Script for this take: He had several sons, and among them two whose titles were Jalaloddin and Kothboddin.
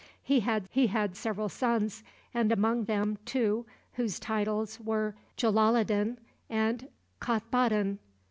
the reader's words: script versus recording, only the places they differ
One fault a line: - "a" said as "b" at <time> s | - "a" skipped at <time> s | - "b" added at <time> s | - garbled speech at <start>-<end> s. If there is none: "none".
- "he had" added at 0.7 s